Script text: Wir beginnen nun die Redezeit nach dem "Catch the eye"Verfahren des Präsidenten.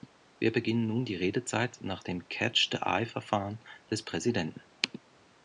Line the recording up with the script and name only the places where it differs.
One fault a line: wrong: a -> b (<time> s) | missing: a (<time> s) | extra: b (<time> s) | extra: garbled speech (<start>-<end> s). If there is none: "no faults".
no faults